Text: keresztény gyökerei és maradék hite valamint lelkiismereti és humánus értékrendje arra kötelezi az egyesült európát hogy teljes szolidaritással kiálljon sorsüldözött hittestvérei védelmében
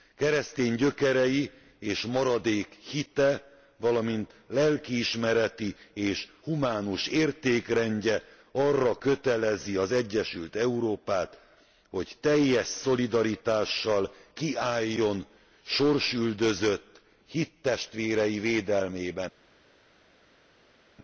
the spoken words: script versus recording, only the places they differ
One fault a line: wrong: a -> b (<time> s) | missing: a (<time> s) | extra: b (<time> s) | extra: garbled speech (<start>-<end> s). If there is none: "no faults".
no faults